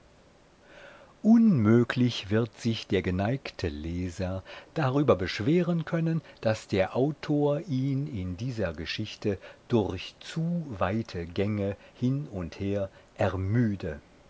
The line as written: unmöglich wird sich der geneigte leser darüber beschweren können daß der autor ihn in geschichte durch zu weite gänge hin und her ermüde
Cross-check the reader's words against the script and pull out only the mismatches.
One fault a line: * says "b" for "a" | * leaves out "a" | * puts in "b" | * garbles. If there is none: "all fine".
* puts in "dieser"